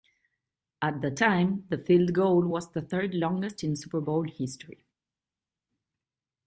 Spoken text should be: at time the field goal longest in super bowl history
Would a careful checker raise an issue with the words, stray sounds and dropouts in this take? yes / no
yes